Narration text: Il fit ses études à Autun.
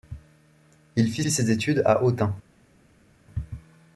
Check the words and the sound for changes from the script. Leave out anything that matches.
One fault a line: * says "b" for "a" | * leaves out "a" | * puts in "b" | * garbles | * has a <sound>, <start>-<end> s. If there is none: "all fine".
* puts in "fit"